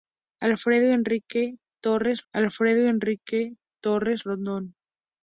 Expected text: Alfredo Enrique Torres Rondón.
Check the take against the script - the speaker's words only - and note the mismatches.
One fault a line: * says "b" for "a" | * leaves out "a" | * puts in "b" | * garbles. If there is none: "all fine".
* puts in "alfredo Enrique Torres"